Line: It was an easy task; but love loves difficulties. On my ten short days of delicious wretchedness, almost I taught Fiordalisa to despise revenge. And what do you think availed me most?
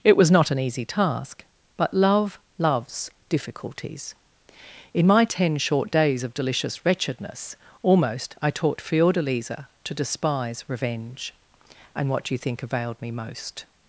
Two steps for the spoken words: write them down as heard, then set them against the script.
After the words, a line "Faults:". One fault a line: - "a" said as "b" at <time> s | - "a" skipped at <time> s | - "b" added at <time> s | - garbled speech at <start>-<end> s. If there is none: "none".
It was not an easy task; but love loves difficulties. In my ten short days of delicious wretchedness, almost I taught Fiordalisa to despise revenge. And what do you think availed me most?
Faults:
- "not" added at 0.3 s
- "On" said as "In" at 4.9 s